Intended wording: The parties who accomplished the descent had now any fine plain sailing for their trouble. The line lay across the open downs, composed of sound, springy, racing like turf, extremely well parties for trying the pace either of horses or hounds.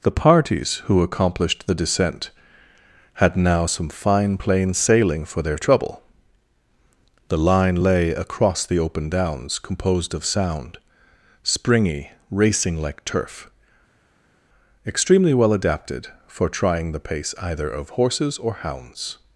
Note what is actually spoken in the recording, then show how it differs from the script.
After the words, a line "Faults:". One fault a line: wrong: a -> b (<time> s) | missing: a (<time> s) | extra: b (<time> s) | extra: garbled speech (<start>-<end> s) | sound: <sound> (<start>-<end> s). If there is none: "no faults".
The parties who accomplished the descent had now some fine plain sailing for their trouble. The line lay across the open downs, composed of sound, springy, racing like turf, extremely well adapted for trying the pace either of horses or hounds.
Faults:
wrong: any -> some (3.7 s)
wrong: parties -> adapted (15.5 s)